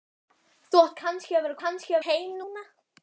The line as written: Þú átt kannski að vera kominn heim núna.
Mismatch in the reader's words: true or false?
true